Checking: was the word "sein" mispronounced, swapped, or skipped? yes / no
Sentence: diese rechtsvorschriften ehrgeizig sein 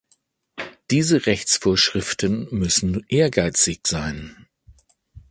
no